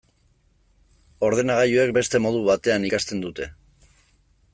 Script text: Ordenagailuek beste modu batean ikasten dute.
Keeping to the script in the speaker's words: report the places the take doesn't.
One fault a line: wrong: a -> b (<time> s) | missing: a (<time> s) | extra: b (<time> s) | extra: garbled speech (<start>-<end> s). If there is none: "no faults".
no faults